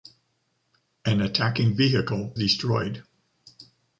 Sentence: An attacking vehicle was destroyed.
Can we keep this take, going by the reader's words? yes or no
no